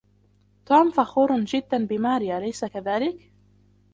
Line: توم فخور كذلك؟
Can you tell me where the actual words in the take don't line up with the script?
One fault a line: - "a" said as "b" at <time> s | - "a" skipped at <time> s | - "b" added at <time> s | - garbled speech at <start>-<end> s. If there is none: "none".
- "جدا بماري أليس" added at 1.4 s